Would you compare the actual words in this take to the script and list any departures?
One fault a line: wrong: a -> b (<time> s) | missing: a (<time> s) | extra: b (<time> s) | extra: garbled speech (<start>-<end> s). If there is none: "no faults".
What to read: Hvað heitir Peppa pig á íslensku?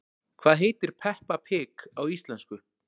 no faults